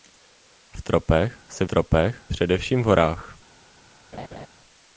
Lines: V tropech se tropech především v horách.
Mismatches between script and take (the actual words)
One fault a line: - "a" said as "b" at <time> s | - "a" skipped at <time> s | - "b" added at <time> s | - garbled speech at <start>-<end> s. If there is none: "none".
none